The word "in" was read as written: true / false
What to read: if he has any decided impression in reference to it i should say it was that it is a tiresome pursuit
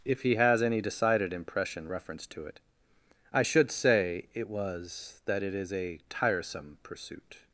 false